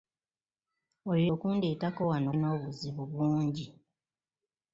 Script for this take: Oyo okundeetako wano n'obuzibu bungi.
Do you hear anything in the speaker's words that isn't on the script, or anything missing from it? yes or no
no